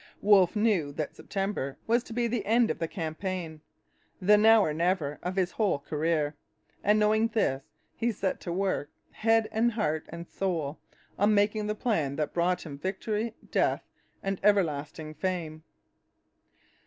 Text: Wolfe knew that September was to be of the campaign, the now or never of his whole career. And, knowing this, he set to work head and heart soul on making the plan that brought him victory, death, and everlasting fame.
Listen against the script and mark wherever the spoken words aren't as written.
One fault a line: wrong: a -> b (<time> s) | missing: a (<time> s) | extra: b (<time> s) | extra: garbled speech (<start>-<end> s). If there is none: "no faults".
extra: the end (2.2 s)
extra: and (10.1 s)